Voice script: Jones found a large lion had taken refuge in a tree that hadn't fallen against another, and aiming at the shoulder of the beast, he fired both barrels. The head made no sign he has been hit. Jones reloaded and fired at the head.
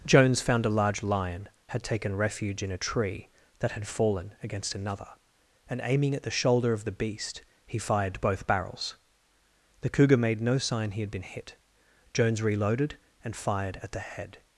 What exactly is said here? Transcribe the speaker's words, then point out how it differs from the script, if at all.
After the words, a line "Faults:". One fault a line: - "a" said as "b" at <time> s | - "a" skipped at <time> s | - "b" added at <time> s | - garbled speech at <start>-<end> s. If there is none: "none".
Jones found a large lion had taken refuge in a tree that had fallen against another, and aiming at the shoulder of the beast, he fired both barrels. The cougar made no sign he had been hit. Jones reloaded and fired at the head.
Faults:
- "hadn't" said as "had" at 3.7 s
- "head" said as "cougar" at 9.9 s
- "has" said as "had" at 11.0 s